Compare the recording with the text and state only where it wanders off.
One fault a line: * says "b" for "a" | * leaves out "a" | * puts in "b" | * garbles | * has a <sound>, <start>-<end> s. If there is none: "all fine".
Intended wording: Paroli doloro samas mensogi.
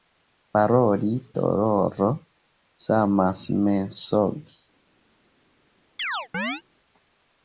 * has a chirp, 6.0-6.6 s